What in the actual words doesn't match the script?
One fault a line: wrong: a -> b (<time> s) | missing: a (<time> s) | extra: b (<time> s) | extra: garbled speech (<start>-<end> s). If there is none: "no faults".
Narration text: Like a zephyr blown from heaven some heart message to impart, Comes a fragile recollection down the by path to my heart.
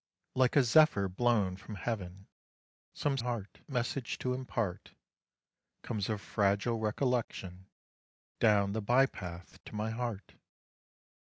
no faults